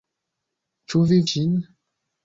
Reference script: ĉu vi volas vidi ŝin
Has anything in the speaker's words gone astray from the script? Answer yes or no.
yes